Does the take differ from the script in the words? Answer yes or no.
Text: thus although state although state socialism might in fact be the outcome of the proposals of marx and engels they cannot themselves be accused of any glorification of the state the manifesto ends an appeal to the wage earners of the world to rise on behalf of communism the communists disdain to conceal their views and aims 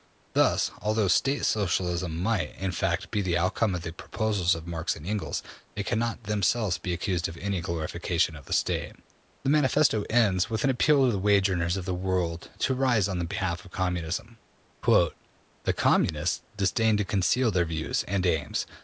yes